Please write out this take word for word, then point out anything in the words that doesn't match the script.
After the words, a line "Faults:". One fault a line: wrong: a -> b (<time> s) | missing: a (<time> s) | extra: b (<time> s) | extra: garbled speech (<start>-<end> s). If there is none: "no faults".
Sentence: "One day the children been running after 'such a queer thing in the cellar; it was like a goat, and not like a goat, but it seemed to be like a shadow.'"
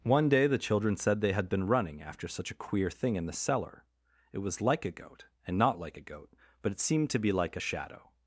"One day the children said they had been running after 'such a queer thing in the cellar; it was like a goat, and not like a goat, but it seemed to be like a shadow.'"
Faults:
extra: said they had (1.0 s)